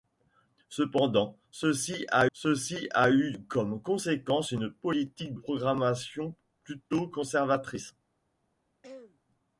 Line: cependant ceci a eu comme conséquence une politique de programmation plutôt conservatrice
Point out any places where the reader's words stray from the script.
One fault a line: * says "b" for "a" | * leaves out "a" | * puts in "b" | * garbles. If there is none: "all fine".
* puts in "ceci a"
* leaves out "de"